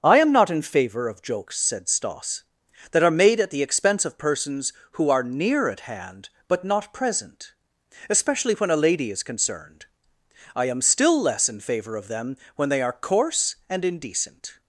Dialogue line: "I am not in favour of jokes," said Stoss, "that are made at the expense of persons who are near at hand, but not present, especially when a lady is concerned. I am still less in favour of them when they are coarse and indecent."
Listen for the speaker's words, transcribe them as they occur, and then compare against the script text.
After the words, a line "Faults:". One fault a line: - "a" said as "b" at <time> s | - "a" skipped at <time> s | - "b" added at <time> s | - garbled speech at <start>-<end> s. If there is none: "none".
"I am not in favour of jokes," said Stoss, "that are made at the expense of persons who are near at hand, but not present, especially when a lady is concerned. I am still less in favour of them when they are coarse and indecent."
Faults:
none